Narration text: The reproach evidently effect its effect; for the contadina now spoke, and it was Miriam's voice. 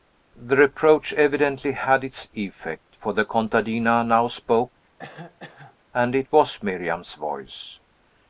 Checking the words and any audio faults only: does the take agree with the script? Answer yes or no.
no